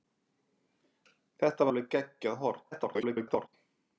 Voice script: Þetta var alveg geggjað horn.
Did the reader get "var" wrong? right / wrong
wrong